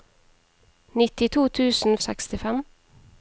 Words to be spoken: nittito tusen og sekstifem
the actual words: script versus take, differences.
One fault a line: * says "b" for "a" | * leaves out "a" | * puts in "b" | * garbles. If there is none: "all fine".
all fine